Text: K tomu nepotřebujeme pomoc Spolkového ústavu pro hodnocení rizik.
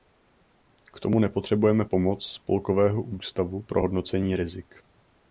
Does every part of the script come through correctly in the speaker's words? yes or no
yes